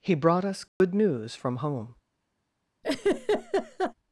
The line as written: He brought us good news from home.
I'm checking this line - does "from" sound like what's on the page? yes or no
yes